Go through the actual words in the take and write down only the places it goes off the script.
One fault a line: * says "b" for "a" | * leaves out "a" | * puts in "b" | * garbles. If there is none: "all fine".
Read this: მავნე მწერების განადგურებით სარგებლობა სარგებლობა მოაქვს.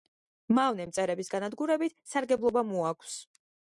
* leaves out "სარგებლობა"